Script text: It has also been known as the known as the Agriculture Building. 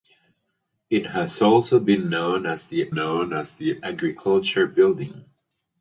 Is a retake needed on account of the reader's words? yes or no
no